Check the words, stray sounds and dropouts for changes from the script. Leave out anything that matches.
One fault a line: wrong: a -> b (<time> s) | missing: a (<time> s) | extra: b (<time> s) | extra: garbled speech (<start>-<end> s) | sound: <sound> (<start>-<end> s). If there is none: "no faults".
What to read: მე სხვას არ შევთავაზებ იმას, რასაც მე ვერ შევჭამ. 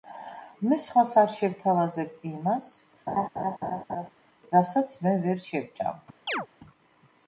sound: laugh (3.1-4.1 s)
sound: chirp (6.3-6.5 s)